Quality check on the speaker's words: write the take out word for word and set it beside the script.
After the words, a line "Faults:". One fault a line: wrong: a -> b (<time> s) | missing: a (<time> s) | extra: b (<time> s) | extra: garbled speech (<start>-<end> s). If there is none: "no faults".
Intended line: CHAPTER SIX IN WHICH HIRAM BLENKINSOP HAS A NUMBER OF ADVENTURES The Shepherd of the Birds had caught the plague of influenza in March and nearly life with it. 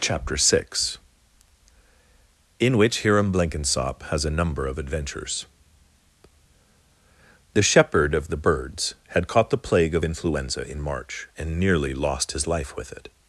CHAPTER SIX IN WHICH HIRAM BLENKINSOP HAS A NUMBER OF ADVENTURES The Shepherd of the Birds had caught the plague of influenza in March and nearly lost his life with it.
Faults:
extra: lost his (11.9 s)